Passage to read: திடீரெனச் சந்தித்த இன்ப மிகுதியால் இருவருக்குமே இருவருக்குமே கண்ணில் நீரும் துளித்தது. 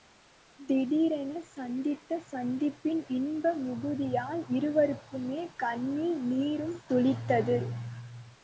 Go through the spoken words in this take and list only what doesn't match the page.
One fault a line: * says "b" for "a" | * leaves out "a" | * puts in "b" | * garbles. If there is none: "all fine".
* puts in "சந்திப்பின்"
* leaves out "இருவருக்குமே"